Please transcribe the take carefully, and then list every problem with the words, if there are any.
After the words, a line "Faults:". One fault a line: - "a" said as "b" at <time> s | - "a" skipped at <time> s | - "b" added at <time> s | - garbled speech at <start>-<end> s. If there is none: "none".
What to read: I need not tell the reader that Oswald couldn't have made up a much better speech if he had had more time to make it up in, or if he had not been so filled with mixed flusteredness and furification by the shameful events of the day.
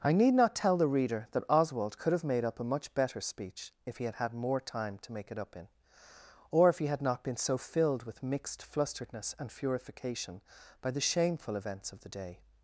I need not tell the reader that Oswald could have made up a much better speech if he had had more time to make it up in, or if he had not been so filled with mixed flusteredness and furification by the shameful events of the day.
Faults:
- "couldn't" said as "could" at 2.0 s